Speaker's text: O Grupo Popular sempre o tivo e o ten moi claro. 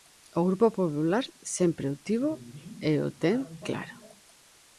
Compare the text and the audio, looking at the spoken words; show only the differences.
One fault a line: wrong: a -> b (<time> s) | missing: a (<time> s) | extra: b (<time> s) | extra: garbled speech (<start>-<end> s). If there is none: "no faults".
missing: moi (3.4 s)